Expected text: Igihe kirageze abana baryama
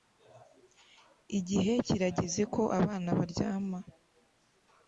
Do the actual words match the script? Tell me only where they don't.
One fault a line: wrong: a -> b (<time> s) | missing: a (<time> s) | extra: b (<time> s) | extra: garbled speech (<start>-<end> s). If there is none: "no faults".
extra: ko (2.5 s)